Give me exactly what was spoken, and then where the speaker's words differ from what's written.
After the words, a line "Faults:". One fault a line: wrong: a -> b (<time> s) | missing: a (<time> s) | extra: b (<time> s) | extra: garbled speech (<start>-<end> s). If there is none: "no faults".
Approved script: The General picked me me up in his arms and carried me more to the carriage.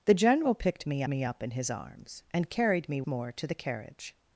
The General picked me me up in his arms and carried me more to the carriage.
Faults:
no faults